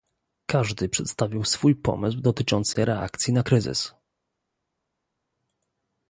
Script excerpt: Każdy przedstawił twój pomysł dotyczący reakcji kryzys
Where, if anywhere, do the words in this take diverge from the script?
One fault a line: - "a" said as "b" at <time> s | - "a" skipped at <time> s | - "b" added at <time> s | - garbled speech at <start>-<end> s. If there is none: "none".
- "twój" said as "swój" at 1.4 s
- "na" added at 3.3 s